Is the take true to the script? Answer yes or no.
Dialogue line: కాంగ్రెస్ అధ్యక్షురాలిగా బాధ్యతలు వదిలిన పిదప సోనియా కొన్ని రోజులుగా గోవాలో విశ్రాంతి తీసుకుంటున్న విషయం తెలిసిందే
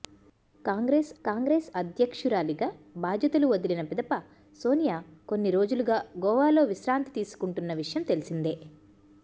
no